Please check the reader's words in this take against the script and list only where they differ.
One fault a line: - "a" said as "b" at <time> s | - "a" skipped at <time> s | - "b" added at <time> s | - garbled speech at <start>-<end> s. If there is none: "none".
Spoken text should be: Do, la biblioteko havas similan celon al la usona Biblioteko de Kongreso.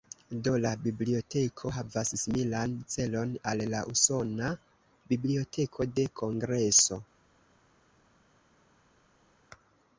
none